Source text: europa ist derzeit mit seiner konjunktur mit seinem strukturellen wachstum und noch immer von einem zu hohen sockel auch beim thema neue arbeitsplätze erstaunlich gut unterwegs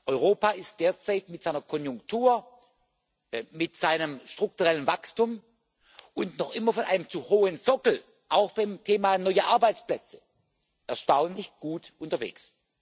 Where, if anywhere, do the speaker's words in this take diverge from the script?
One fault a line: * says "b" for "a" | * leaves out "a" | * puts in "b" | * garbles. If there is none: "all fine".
all fine